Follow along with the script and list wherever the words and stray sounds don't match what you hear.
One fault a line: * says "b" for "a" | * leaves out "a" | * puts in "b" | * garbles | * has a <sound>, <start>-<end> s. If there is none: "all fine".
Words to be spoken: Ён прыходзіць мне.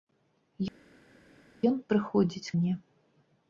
all fine